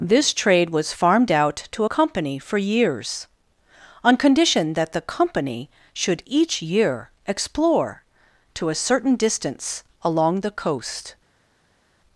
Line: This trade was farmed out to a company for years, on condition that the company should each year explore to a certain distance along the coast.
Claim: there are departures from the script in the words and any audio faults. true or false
false